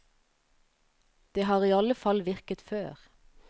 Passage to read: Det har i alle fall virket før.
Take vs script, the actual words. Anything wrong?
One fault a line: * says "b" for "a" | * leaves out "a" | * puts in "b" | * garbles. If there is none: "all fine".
all fine